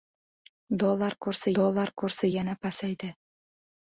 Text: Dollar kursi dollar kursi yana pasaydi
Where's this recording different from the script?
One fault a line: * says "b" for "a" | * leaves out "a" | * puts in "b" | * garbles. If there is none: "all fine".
all fine